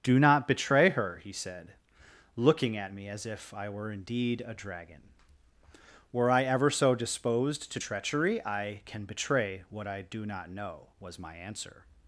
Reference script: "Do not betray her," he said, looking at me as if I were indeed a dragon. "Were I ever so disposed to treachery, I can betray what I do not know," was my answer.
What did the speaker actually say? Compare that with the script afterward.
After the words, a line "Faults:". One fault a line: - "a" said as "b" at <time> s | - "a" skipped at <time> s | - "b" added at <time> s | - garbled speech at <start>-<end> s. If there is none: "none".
"Do not betray her," he said, looking at me as if I were indeed a dragon. "Were I ever so disposed to treachery, I can betray what I do not know," was my answer.
Faults:
none